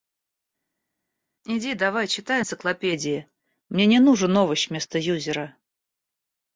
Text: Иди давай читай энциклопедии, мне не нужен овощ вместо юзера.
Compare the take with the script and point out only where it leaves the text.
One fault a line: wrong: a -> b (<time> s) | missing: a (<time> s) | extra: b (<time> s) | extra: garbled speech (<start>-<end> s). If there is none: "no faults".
no faults